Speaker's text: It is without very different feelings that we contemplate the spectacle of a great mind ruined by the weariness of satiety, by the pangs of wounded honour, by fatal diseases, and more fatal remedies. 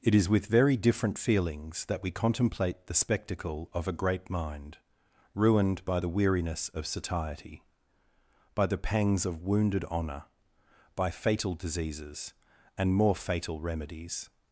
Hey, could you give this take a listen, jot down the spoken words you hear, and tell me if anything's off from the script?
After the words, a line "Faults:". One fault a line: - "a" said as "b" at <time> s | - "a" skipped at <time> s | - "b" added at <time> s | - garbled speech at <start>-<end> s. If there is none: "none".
It is with very different feelings that we contemplate the spectacle of a great mind ruined by the weariness of satiety, by the pangs of wounded honour, by fatal diseases, and more fatal remedies.
Faults:
- "without" said as "with" at 0.3 s